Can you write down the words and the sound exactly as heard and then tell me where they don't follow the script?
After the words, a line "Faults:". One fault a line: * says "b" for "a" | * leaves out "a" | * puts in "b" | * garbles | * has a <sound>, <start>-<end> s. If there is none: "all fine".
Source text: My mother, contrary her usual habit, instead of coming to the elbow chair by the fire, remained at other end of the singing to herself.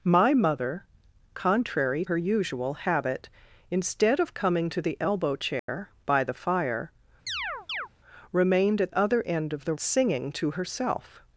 My mother, contrary her usual habit, instead of coming to the elbow chair by the fire, remained at other end of the singing to herself.
Faults:
* has a dropout, 5.6-5.7 s
* has a chirp, 7.3-7.9 s